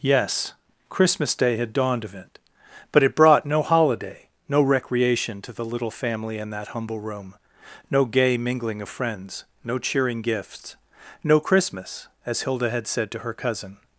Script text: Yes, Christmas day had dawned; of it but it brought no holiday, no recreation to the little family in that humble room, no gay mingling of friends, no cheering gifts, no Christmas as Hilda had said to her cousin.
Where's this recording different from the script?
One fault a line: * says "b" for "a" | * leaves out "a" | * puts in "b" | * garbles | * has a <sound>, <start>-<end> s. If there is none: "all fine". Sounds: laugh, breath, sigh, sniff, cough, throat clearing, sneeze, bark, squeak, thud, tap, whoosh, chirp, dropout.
all fine